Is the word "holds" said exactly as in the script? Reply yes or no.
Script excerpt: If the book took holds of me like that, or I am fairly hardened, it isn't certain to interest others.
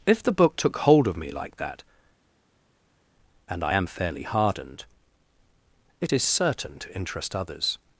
no